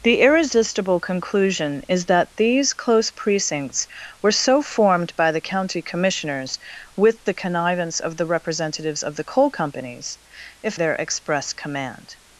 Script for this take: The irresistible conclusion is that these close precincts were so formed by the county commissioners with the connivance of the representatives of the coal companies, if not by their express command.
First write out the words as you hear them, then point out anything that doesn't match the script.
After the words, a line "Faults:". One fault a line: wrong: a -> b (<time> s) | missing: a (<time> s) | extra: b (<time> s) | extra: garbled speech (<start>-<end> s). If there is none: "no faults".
The irresistible conclusion is that these close precincts were so formed by the county commissioners with the connivance of the representatives of the coal companies, if their express command.
Faults:
missing: not by (10.8 s)